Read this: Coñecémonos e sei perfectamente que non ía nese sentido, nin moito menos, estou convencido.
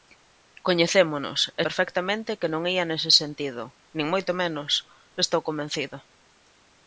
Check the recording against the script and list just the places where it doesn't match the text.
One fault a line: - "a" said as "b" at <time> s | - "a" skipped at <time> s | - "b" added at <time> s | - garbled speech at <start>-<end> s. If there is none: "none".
- "sei" skipped at 1.6 s